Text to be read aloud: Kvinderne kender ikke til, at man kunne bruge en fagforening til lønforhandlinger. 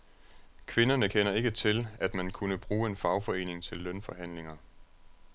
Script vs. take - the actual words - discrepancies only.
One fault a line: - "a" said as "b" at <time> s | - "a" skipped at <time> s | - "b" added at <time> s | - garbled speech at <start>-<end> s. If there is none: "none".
none